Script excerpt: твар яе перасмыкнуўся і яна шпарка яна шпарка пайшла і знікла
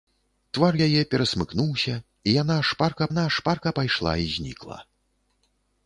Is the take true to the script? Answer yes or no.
yes